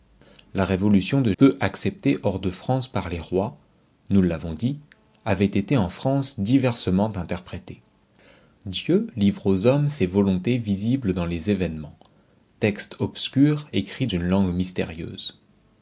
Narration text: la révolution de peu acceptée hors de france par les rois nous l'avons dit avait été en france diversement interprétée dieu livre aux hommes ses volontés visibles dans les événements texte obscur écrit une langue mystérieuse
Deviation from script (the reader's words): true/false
false